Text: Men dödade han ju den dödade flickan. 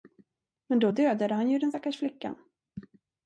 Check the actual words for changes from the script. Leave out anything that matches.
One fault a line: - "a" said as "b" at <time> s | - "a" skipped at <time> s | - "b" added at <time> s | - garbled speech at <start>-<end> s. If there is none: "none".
- "då" added at 0.8 s
- "dödade" said as "stackars" at 1.7 s